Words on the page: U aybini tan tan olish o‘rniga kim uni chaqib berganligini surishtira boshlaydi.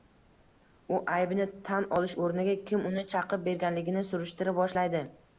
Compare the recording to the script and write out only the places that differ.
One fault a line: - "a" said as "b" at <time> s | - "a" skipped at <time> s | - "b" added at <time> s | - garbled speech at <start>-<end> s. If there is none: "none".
- "tan" skipped at 1.9 s